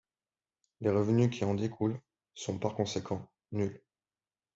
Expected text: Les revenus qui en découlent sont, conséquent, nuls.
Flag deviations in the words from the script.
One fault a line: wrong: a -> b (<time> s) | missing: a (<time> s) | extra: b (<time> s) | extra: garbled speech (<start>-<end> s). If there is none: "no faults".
extra: par (2.6 s)